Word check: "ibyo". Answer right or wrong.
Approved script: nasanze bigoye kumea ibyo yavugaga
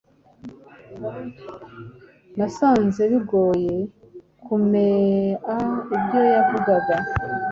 right